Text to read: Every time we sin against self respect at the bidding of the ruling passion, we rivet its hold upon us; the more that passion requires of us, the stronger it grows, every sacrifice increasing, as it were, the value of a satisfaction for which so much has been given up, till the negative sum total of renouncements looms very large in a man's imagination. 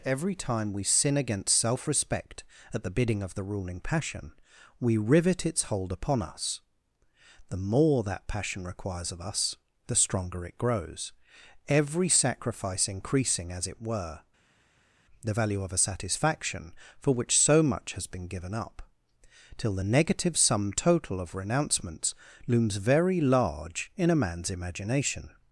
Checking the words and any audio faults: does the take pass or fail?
pass